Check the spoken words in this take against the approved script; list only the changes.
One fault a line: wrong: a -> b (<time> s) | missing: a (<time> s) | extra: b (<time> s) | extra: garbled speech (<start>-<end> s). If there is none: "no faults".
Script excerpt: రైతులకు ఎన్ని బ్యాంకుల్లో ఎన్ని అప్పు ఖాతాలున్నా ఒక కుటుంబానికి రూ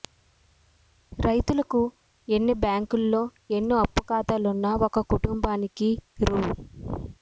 no faults